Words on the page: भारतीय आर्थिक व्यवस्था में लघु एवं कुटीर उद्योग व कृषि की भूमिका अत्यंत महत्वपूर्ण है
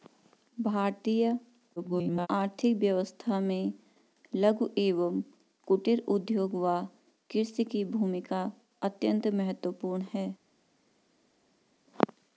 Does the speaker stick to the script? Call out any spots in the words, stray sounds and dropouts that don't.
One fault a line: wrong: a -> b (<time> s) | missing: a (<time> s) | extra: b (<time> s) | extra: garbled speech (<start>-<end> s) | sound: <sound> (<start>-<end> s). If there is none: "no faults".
extra: garbled speech (1.8-2.3 s)